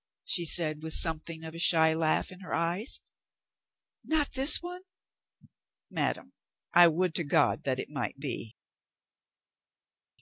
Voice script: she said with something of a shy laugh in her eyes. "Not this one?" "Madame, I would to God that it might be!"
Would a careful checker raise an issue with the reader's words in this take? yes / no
no